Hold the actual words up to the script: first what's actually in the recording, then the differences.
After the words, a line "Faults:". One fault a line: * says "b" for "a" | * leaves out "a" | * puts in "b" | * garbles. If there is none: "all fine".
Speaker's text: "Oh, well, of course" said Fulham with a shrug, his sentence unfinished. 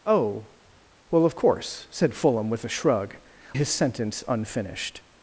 "Oh, well, of course" said Fulham with a shrug, his sentence unfinished.
Faults:
all fine